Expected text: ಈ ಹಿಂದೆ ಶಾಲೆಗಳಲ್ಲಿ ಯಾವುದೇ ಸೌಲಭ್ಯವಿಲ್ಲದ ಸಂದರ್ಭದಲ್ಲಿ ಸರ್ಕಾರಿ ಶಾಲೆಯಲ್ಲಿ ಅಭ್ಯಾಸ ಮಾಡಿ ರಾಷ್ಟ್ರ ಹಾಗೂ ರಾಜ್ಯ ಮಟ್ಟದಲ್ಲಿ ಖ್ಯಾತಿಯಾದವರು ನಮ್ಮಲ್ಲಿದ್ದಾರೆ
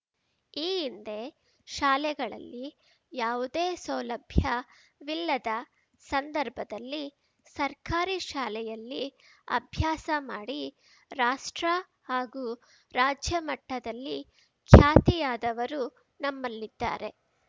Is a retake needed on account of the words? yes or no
no